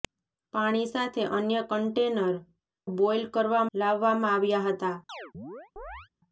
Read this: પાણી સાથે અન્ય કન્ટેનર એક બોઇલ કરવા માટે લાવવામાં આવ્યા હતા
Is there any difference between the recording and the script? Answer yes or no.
yes